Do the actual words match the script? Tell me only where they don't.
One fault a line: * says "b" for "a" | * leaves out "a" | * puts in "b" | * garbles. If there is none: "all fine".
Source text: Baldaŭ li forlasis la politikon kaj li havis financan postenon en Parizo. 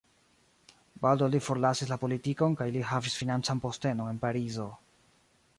all fine